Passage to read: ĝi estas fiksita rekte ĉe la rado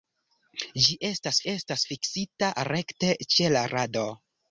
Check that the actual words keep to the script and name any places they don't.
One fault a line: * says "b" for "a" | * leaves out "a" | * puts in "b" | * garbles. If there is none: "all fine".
* puts in "estas"